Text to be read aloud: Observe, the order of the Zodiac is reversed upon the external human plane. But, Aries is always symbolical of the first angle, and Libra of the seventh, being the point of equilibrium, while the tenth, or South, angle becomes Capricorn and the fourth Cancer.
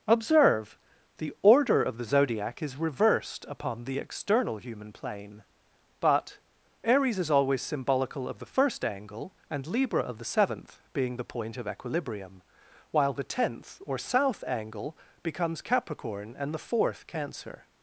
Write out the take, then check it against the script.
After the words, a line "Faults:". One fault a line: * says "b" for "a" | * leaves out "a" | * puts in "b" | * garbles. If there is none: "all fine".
Observe, the order of the Zodiac is reversed upon the external human plane. But, Aries is always symbolical of the first angle, and Libra of the seventh, being the point of equilibrium, while the tenth, or South, angle becomes Capricorn and the fourth Cancer.
Faults:
all fine